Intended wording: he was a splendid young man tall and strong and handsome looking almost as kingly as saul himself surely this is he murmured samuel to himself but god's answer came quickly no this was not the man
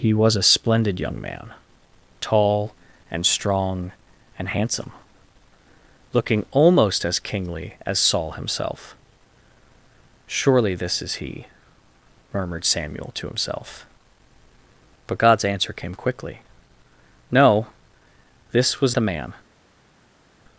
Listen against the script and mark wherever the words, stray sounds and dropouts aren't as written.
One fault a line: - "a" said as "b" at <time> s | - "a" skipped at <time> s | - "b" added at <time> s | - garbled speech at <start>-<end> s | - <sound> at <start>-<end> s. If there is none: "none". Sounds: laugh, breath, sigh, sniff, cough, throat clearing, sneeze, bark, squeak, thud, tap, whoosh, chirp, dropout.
- "not" skipped at 19.0 s